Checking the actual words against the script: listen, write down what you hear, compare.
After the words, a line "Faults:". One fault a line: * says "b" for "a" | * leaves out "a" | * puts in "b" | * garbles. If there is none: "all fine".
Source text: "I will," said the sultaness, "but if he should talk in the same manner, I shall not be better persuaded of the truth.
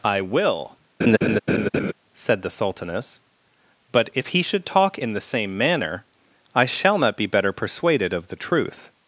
"I will," said the sultaness, "but if he should talk in the same manner, I shall not be better persuaded of the truth.
Faults:
all fine